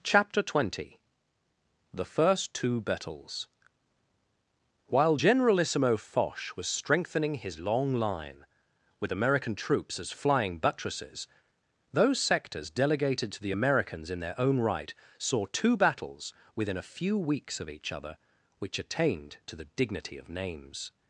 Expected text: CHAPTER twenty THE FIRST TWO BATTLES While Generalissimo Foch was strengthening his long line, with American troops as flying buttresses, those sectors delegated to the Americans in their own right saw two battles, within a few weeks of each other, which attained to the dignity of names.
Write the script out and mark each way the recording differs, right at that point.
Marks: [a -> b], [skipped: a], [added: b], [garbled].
CHAPTER twenty THE FIRST TWO BATTLES While Generalissimo Foch was strengthening his long line, with American troops as flying buttresses, those sectors delegated to the Americans in their own right saw two battles, within a few weeks of each other, which attained to the dignity of names.